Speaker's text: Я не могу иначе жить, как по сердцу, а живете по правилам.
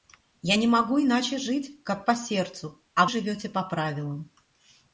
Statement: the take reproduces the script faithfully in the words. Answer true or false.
true